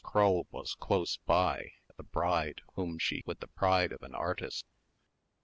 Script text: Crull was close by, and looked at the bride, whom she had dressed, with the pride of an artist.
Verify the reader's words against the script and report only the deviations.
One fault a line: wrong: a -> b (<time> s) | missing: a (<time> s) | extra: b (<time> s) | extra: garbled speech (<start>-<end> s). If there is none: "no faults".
missing: and looked (1.7 s)
missing: had dressed (3.2 s)